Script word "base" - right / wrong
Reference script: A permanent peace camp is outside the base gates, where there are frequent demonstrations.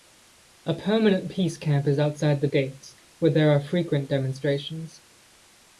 wrong